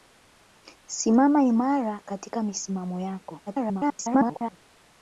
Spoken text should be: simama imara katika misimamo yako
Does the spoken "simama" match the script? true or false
true